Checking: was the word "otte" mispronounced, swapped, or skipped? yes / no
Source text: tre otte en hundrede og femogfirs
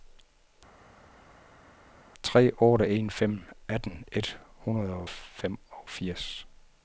no